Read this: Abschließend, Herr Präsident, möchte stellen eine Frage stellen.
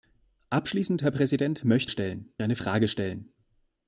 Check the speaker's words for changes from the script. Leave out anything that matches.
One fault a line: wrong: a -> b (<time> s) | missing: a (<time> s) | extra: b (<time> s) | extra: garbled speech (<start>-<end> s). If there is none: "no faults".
no faults